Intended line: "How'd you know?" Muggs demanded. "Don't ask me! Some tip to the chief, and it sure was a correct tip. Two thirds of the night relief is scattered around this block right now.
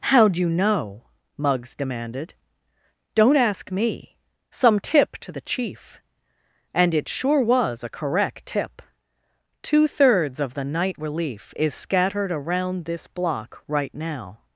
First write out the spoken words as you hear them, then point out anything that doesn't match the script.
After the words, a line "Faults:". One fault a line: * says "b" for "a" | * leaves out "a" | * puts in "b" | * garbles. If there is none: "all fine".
"How'd you know?" Muggs demanded. "Don't ask me! Some tip to the chief, and it sure was a correct tip. Two thirds of the night relief is scattered around this block right now.
Faults:
all fine